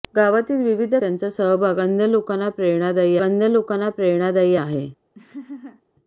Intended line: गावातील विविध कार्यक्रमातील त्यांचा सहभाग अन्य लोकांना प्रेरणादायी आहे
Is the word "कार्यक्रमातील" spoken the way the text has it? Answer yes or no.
no